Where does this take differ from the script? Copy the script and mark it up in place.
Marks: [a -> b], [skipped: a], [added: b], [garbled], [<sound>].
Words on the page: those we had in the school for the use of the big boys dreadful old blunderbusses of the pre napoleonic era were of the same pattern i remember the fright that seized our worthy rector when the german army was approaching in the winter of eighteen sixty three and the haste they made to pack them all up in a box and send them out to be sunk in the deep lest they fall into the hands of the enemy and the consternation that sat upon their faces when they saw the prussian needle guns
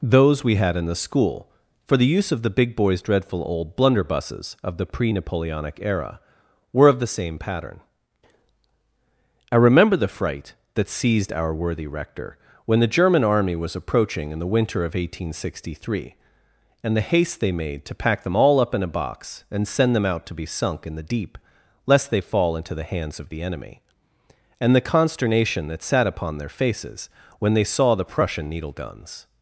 those we had in the school for the use of the big boys dreadful old blunderbusses of the pre napoleonic era were of the same pattern i remember the fright that seized our worthy rector when the german army was approaching in the winter of eighteen sixty three and the haste they made to pack them all up in a box and send them out to be sunk in the deep lest they fall into the hands of the enemy and the consternation that sat upon their faces when they saw the prussian needle guns